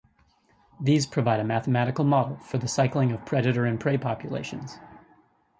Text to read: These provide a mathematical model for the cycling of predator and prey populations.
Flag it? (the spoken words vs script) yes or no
no